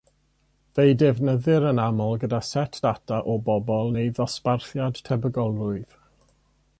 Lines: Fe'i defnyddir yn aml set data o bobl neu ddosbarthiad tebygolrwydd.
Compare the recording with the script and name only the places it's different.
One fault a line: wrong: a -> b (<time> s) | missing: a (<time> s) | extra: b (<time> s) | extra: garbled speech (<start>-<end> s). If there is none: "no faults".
extra: gyda (2.2 s)